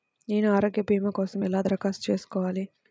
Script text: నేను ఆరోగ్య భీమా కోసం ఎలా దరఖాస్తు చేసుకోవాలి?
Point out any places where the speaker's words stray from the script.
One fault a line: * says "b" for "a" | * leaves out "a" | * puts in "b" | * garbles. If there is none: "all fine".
all fine